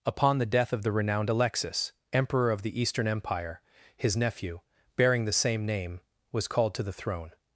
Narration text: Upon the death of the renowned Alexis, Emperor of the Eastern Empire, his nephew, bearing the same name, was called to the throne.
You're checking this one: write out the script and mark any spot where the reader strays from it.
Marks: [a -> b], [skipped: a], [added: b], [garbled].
Upon the death of the renowned Alexis, Emperor of the Eastern Empire, his nephew, bearing the same name, was called to the throne.